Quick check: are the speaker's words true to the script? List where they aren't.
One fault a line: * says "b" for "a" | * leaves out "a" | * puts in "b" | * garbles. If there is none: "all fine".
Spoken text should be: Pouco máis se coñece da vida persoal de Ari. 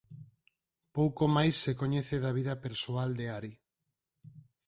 all fine